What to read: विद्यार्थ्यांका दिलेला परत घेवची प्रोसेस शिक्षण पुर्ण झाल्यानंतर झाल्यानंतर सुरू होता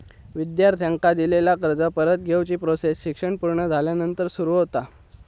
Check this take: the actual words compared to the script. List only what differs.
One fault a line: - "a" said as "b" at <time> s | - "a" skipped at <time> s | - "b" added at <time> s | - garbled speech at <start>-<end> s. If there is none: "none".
- "कर्ज" added at 1.6 s
- "झाल्यानंतर" skipped at 4.3 s